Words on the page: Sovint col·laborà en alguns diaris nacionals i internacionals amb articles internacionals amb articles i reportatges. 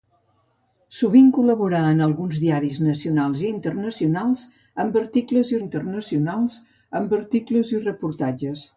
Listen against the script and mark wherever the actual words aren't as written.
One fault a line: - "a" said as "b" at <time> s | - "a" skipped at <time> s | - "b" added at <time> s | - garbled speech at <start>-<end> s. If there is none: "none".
none